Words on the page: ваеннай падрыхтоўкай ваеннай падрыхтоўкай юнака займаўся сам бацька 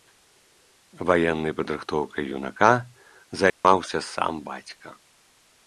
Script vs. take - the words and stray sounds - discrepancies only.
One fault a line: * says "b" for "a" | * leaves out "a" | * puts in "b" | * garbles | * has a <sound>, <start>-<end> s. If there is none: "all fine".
* leaves out "ваеннай падрыхтоўкай"
* has a dropout, 3.5-3.6 s